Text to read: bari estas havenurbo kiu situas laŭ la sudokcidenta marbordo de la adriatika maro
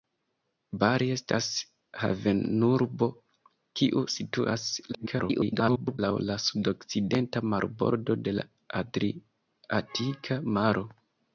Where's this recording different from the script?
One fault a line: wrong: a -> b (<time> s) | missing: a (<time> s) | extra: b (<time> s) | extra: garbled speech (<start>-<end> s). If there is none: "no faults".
extra: garbled speech (4.9-6.0 s)